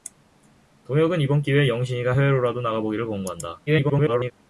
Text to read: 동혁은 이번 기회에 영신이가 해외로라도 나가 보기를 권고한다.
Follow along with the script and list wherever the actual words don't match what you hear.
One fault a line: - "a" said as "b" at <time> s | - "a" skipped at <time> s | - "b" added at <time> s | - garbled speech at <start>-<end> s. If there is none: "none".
- garbled speech at 3.7-4.3 s